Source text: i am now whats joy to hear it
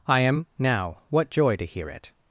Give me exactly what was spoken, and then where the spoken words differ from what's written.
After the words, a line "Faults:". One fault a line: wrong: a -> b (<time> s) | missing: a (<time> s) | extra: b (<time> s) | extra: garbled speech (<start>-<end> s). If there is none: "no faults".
i am now what joy to hear it
Faults:
wrong: whats -> what (1.1 s)